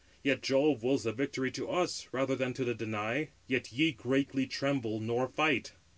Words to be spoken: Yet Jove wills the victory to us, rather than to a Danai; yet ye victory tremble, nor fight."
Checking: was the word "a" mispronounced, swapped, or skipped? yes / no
yes